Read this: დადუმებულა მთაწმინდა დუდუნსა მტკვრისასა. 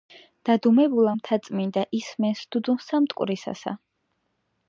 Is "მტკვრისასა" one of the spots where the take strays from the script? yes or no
no